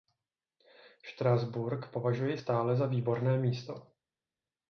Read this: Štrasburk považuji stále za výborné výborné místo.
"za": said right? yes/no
yes